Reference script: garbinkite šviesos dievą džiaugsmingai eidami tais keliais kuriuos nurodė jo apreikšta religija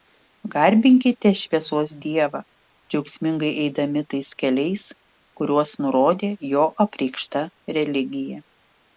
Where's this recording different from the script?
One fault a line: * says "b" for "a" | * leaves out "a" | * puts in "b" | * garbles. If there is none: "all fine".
all fine